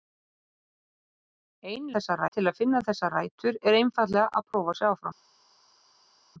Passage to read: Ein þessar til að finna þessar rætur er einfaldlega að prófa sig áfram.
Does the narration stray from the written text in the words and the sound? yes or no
no